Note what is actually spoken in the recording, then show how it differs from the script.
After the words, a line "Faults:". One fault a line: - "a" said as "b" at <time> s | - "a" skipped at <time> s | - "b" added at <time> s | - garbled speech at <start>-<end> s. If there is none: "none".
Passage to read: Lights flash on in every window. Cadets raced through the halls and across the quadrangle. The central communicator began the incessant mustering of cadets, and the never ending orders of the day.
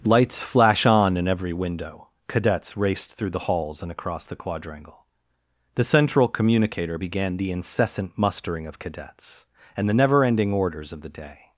Lights flash on in every window. Cadets raced through the halls and across the quadrangle. The central communicator began the incessant mustering of cadets, and the never ending orders of the day.
Faults:
none